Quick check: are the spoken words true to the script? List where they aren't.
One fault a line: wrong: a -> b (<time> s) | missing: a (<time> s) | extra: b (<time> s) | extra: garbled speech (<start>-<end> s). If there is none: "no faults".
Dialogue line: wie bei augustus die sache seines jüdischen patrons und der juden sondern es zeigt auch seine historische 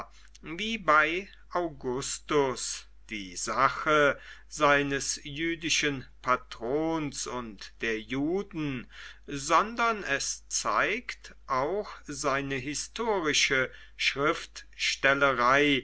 no faults